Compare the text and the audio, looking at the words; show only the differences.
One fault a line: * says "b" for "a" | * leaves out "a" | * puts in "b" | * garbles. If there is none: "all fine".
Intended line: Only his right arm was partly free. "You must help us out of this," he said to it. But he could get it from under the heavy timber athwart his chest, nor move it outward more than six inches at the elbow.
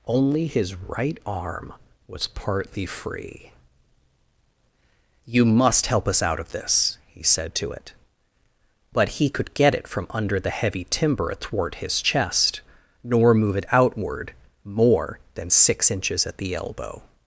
all fine